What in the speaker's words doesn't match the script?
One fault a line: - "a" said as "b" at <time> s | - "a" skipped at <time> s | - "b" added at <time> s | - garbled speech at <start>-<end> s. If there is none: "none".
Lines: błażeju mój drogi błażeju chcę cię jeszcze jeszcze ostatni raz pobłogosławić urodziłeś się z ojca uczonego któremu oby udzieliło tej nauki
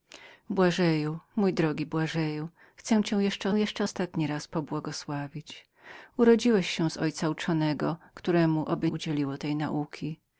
none